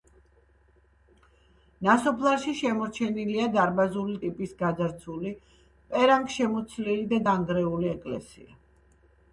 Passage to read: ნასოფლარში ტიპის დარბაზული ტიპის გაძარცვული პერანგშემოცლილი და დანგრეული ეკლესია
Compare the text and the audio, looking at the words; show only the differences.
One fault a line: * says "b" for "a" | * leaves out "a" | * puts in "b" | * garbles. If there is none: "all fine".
* says "შემორჩენილია" for "ტიპის"